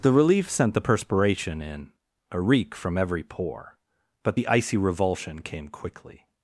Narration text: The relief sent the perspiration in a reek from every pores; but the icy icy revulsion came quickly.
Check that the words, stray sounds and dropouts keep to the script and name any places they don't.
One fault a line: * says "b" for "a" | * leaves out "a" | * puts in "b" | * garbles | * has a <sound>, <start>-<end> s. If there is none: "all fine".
* says "pore" for "pores"
* leaves out "icy"